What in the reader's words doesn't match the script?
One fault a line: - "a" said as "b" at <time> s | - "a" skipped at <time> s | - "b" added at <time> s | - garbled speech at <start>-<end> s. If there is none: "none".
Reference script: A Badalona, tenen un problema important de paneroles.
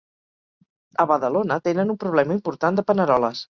none